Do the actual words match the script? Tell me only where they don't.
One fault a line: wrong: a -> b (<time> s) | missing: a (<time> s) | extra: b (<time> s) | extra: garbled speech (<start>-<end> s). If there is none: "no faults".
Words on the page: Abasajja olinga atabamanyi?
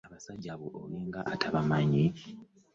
extra: abo (0.5 s)